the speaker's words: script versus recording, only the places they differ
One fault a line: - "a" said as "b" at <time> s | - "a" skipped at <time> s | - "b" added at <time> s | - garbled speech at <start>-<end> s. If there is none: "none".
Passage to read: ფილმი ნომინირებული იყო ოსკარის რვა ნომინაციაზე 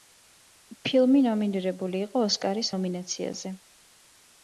- "რვა" skipped at 2.7 s